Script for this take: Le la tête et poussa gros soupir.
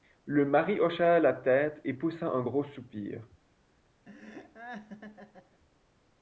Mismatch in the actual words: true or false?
true